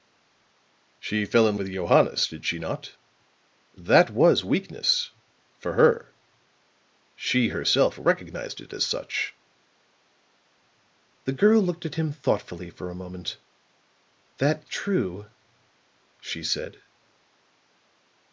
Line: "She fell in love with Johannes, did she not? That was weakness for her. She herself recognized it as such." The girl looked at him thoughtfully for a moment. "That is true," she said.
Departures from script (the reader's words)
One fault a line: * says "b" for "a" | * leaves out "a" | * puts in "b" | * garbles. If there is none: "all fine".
* leaves out "love"
* leaves out "is"